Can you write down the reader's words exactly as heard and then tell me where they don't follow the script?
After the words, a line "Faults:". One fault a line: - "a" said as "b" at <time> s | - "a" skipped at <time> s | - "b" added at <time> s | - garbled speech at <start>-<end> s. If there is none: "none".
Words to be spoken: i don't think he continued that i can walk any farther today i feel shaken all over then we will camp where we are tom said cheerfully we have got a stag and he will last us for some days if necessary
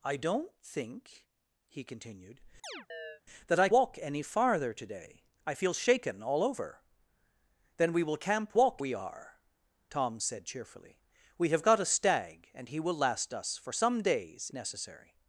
i don't think he continued that i walk any farther today i feel shaken all over then we will camp walk we are tom said cheerfully we have got a stag and he will last us for some days necessary
Faults:
- "can" skipped at 3.7 s
- "where" said as "walk" at 8.5 s
- "if" skipped at 14.5 s